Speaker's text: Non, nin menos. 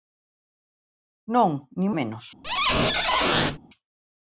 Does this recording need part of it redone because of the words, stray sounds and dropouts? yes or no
yes